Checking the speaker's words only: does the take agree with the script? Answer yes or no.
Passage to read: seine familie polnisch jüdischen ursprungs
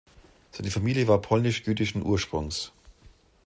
no